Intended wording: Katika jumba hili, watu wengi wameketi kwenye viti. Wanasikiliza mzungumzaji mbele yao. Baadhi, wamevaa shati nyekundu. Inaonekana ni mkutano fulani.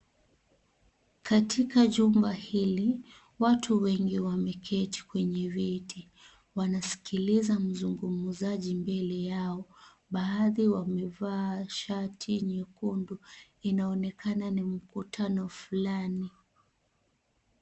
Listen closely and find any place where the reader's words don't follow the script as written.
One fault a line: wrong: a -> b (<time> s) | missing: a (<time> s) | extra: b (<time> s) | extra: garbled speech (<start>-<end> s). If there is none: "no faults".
no faults